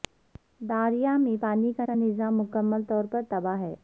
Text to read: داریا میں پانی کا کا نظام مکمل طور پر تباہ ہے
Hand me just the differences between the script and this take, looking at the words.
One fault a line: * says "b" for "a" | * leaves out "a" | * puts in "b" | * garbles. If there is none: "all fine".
all fine